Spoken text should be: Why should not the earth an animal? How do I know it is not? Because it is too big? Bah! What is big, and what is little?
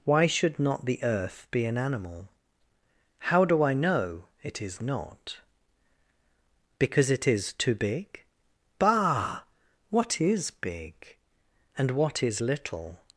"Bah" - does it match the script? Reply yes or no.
yes